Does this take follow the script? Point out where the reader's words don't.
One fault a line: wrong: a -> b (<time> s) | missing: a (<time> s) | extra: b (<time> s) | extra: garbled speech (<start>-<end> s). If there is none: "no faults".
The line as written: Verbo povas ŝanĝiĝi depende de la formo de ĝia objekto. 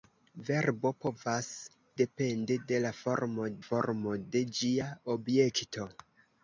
missing: ŝanĝiĝi (1.5 s)
extra: formo (3.7 s)